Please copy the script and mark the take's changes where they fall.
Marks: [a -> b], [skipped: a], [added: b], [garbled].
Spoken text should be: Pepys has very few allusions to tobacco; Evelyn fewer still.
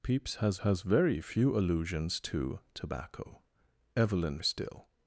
Pepys has [added: has] very few allusions to tobacco; Evelyn [skipped: fewer] still.